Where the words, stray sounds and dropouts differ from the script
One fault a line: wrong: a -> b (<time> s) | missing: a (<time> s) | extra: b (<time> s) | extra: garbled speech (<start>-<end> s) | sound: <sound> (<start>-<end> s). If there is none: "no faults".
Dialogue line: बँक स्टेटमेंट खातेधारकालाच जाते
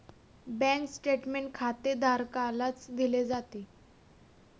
extra: दिले (2.9 s)